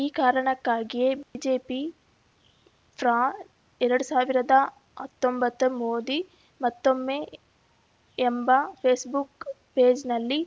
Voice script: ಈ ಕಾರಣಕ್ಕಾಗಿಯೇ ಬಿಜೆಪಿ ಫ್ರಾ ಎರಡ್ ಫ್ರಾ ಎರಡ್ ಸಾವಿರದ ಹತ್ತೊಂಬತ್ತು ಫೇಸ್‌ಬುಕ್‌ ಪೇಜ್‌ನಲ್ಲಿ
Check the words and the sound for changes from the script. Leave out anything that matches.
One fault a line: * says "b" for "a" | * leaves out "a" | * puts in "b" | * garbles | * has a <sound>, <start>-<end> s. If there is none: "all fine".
* has a dropout, 1.2-1.3 s
* says "ಸಾವಿರದ ಹತ್ತೊಂಬತ್ತು ಮೋದಿ ಮತ್ತೊಮ್ಮೆ ಎಂಬ" for "ಫ್ರಾ ಎರಡ್ ಸಾವಿರದ ಹತ್ತೊಂಬತ್ತು"